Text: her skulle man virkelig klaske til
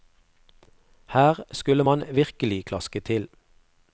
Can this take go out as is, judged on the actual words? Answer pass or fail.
pass